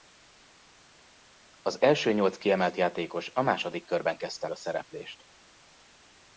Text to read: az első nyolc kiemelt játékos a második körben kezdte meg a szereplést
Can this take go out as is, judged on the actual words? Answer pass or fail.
fail